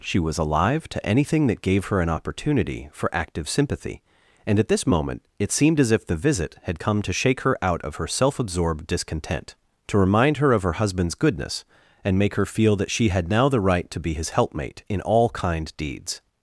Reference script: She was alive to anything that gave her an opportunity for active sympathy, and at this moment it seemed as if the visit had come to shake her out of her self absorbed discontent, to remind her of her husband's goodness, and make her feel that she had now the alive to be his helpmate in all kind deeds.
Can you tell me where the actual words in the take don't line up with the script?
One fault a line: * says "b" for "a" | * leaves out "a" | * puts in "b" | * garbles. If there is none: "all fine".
* says "right" for "alive"